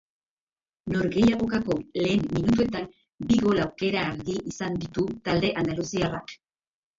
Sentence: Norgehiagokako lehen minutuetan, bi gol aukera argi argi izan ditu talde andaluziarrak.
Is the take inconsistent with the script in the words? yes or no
yes